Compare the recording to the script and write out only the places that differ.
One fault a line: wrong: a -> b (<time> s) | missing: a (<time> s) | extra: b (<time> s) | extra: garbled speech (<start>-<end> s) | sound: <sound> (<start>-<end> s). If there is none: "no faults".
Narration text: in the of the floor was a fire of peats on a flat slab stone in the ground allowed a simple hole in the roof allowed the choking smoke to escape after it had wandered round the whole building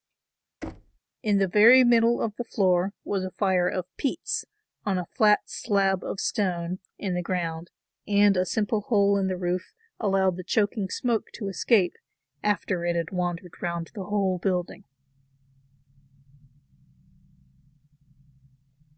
sound: thud (0.6-1.0 s)
extra: very middle (1.5 s)
extra: of (6.0 s)
wrong: allowed -> and (8.1 s)